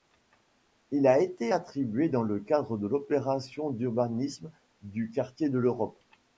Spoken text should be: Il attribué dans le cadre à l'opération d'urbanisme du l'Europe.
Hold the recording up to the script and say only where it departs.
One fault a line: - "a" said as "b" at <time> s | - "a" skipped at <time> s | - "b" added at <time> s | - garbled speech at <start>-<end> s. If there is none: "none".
- "a été" added at 1.1 s
- "à" said as "de" at 2.8 s
- "quartier de" added at 5.1 s